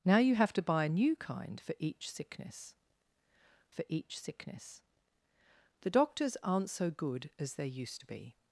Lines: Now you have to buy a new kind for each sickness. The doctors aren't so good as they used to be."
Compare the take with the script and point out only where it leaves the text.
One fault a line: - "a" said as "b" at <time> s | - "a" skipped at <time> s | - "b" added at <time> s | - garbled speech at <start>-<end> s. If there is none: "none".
- "for each sickness" added at 3.7 s